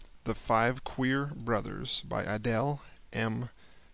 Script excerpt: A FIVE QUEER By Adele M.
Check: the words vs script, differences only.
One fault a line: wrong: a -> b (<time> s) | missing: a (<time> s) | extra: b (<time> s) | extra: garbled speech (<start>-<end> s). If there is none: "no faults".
wrong: A -> THE (0.2 s)
extra: BROTHERS (1.3 s)